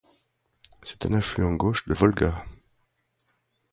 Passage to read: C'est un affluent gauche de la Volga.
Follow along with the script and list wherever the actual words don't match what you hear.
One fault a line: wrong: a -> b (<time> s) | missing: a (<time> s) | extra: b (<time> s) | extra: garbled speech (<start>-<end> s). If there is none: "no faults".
missing: la (1.9 s)